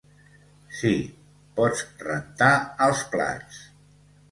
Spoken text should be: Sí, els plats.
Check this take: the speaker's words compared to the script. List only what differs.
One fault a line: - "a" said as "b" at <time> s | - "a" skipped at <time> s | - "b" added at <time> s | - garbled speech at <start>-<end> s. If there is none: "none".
- "pots rentar" added at 1.6 s